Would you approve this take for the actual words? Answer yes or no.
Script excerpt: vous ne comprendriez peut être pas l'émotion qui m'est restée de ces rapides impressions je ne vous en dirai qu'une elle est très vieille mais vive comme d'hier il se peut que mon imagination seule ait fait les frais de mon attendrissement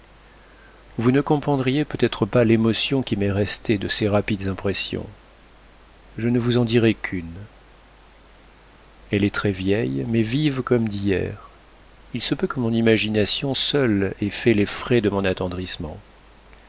yes